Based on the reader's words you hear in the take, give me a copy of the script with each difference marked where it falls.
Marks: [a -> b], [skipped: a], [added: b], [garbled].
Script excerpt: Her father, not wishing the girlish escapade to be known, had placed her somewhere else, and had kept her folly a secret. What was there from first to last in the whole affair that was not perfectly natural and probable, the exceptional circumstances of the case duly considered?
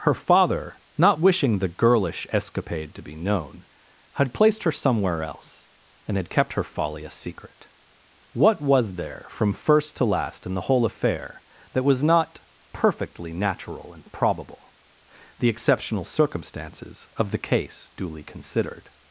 Her father, not wishing the girlish escapade to be known, had placed her somewhere else, and had kept her folly a secret. What was there from first to last in the whole affair that was not perfectly natural and probable, the exceptional circumstances of the case duly considered?